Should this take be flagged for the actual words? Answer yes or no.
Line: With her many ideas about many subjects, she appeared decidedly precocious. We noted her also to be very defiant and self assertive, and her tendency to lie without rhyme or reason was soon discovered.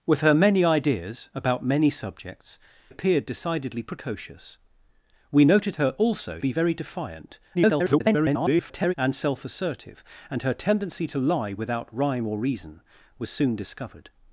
yes